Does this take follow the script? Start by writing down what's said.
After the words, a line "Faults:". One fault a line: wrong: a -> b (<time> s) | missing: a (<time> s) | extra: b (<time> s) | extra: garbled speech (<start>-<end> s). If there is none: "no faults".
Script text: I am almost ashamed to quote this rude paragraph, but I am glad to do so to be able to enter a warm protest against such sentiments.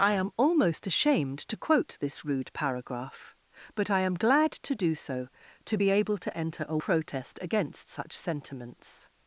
I am almost ashamed to quote this rude paragraph, but I am glad to do so to be able to enter a protest against such sentiments.
Faults:
missing: warm (6.8 s)